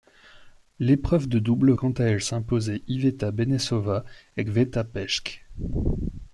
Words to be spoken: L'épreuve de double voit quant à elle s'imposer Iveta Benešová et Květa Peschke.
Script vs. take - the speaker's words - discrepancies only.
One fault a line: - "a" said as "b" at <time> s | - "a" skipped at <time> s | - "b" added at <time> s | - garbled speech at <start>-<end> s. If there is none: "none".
- "voit" skipped at 1.7 s